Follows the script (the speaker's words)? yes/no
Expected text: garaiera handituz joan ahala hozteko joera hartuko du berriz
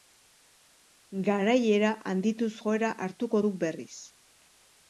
no